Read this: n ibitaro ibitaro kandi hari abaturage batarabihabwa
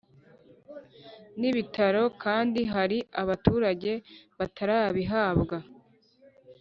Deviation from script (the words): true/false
true